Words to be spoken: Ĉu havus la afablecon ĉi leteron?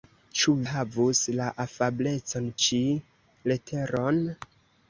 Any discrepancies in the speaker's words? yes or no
no